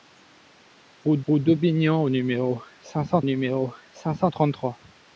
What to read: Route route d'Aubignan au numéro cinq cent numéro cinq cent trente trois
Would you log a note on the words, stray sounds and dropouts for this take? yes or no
no